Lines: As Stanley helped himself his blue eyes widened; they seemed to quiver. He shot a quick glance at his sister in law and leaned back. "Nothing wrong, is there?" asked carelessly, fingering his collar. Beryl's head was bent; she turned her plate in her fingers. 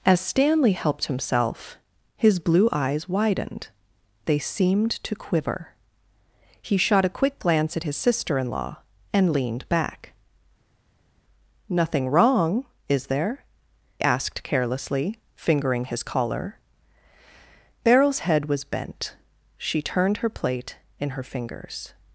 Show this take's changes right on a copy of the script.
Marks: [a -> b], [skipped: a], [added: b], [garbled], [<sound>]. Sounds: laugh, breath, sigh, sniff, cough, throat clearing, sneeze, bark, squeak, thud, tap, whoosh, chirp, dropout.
As Stanley helped himself his blue eyes widened; they seemed to quiver. He shot a quick glance at his sister in law and leaned back. "Nothing wrong, is there?" asked carelessly, fingering his collar. Beryl's head was bent; she turned her plate in her fingers.